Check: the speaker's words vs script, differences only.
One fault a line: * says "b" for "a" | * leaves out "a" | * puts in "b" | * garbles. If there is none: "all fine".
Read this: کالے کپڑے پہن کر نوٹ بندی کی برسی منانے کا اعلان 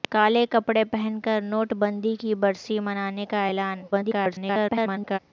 * garbles